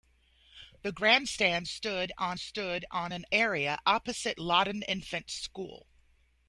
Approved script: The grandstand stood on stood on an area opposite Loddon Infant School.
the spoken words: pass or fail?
pass